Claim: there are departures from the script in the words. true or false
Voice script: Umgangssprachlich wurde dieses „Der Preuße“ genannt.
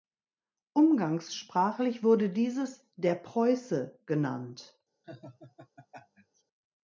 false